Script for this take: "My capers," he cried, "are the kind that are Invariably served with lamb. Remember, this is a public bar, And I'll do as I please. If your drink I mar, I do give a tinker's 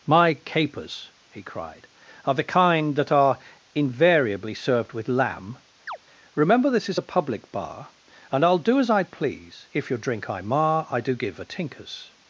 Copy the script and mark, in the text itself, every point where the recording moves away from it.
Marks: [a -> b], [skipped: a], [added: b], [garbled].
"My capers," he cried, "are the kind that are Invariably served with lamb. Remember, this is a public bar, And I'll do as I please. If your drink I mar, I do give a tinker's